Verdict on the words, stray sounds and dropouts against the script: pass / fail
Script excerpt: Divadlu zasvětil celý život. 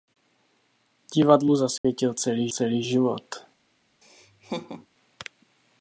fail